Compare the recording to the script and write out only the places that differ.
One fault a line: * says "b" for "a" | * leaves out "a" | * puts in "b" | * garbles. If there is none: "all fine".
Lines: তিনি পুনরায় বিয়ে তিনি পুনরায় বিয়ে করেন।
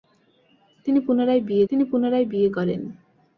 all fine